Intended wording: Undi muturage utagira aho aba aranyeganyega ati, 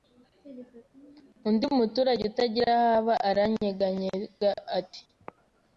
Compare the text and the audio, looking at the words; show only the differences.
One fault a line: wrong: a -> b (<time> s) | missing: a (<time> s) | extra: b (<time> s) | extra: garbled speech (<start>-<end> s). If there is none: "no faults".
no faults